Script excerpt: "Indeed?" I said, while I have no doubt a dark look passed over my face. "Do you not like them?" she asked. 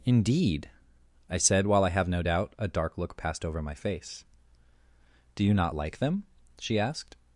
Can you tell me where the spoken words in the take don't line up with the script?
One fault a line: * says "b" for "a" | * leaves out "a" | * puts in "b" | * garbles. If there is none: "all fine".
all fine